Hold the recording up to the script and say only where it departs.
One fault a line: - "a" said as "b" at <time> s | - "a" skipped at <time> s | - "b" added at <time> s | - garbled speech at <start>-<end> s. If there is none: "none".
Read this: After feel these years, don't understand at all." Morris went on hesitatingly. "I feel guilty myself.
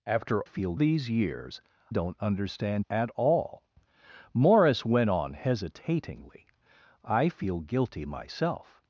none